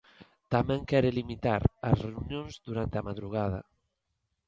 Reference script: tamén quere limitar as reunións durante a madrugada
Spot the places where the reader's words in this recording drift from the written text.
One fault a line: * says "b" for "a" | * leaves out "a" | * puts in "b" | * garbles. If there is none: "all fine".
all fine